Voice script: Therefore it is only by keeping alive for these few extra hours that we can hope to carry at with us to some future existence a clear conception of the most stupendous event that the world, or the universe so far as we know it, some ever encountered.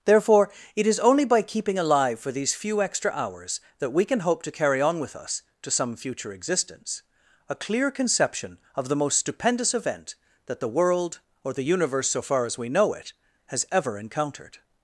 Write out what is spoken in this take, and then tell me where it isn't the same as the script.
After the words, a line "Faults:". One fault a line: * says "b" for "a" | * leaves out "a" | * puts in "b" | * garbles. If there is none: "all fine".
Therefore it is only by keeping alive for these few extra hours that we can hope to carry on with us to some future existence a clear conception of the most stupendous event that the world, or the universe so far as we know it, has ever encountered.
Faults:
* says "on" for "at"
* says "has" for "some"